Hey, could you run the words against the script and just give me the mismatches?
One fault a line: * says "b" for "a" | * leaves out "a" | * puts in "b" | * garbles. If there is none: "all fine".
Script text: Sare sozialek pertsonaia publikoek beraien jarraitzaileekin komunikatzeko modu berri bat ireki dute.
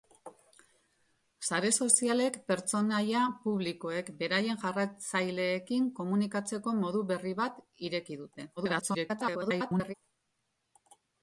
* garbles